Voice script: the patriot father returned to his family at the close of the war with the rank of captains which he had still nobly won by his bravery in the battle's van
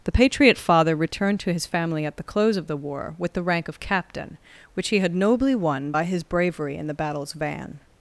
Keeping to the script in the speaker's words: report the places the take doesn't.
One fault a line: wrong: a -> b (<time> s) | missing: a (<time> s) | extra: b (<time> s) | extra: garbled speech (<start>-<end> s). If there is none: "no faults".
wrong: captains -> captain (3.8 s)
missing: still (5.1 s)